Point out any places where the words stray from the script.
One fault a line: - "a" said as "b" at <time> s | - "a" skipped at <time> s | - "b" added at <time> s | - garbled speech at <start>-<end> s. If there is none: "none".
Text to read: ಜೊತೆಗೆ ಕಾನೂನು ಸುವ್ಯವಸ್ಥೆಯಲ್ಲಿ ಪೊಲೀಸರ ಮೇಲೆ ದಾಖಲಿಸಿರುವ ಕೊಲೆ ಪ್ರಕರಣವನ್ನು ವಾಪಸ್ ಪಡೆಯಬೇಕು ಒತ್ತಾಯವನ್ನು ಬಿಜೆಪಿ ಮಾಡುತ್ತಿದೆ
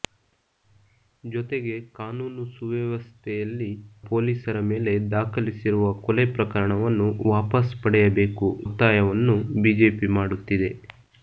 none